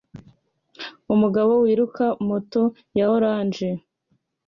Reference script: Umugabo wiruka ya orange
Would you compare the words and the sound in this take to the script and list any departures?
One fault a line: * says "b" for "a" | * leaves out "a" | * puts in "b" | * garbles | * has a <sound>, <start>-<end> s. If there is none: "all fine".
* puts in "moto"